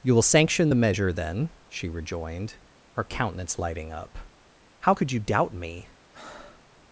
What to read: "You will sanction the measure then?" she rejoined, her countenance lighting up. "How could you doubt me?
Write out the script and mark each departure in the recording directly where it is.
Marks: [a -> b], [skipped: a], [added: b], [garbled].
"You will sanction the measure then?" she rejoined, her countenance lighting up. "How could you doubt me?